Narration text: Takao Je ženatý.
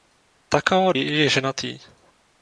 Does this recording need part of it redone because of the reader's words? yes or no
no